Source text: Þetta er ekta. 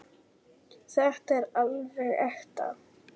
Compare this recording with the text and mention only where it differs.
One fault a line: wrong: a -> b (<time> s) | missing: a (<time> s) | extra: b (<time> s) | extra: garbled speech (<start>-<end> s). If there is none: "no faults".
extra: alveg (1.6 s)